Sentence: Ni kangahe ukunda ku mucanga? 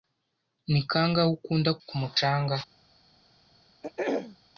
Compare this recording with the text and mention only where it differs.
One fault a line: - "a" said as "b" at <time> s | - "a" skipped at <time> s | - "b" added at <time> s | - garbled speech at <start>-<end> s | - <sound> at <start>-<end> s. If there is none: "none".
- throat clearing at 3.8-4.4 s